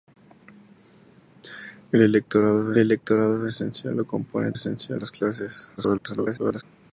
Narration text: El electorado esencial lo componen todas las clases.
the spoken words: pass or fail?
fail